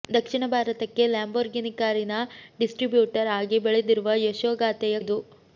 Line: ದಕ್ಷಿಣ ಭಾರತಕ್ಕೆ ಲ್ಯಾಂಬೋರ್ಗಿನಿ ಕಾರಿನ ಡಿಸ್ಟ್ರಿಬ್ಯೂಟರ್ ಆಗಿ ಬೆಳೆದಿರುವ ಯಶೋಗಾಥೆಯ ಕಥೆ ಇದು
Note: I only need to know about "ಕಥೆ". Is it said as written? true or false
false